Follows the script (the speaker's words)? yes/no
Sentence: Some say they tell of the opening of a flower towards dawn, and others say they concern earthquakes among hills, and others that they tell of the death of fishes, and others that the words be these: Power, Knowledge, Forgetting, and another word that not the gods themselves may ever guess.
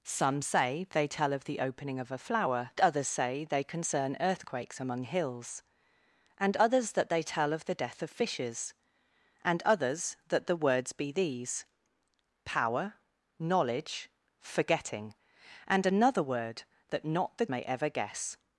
no